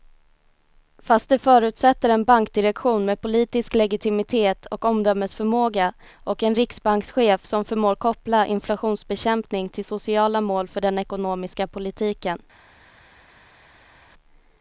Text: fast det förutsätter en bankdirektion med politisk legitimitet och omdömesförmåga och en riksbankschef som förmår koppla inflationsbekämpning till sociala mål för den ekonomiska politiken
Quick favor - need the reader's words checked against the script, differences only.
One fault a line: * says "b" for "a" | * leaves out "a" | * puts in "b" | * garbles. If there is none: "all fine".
all fine